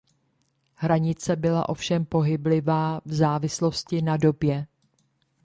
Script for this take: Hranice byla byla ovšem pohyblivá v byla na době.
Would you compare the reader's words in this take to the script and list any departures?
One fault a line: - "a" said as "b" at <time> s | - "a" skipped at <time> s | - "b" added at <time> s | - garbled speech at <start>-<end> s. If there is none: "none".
- "byla" skipped at 1.7 s
- "byla" said as "závislosti" at 3.1 s